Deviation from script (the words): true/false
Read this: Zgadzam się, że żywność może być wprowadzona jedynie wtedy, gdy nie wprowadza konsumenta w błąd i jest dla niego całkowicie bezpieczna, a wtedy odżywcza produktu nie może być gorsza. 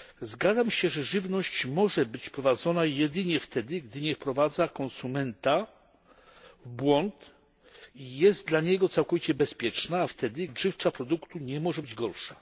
false